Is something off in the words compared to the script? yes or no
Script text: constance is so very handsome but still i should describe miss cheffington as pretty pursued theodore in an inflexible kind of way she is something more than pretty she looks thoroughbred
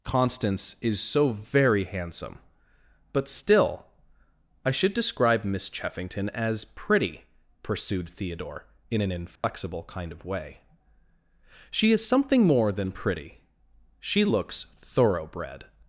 no